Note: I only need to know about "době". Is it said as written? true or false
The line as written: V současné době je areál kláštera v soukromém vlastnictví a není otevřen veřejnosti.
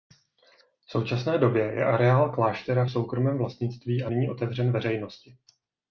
true